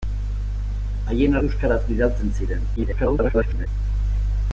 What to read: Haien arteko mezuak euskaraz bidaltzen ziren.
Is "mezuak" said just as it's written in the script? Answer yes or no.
no